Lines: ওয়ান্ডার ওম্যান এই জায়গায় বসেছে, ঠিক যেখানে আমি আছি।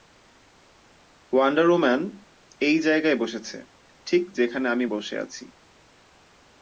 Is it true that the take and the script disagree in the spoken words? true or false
true